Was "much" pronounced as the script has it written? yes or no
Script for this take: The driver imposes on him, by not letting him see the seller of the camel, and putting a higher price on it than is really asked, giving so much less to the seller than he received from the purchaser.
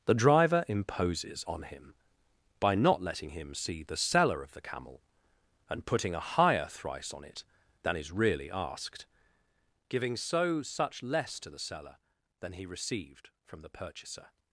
no